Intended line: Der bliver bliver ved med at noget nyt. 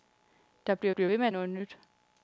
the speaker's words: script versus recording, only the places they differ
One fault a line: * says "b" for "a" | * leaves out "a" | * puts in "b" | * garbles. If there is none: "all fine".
all fine